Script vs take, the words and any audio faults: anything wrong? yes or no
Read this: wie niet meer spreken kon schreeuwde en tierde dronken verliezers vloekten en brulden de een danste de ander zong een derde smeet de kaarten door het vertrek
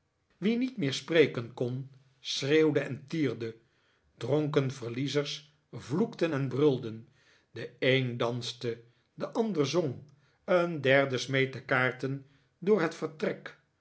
no